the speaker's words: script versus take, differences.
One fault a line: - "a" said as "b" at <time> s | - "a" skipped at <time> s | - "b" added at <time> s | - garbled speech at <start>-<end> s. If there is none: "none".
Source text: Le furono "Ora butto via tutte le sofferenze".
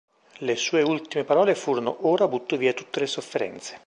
- "sue ultime parole" added at 0.6 s